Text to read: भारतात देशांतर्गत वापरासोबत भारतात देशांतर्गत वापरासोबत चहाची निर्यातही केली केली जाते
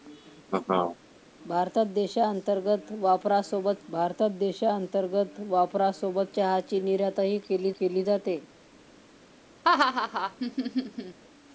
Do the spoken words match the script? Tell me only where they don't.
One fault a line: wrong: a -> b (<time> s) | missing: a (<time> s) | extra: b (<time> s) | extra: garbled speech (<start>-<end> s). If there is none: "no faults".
no faults